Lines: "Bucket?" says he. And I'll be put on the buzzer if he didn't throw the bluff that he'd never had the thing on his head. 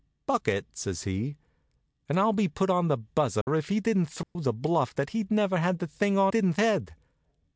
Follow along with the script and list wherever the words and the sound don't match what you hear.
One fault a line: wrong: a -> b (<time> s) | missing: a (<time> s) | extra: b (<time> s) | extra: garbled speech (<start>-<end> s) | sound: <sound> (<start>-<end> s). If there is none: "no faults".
sound: dropout (3.4-3.5 s)
sound: dropout (4.2-4.4 s)
wrong: his -> didn't (6.3 s)